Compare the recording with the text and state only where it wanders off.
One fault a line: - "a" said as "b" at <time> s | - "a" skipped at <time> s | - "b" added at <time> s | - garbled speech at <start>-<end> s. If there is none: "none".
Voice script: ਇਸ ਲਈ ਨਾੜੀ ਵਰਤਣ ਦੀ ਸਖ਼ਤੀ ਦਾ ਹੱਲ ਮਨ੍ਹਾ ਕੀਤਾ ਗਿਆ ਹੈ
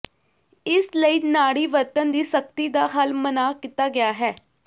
none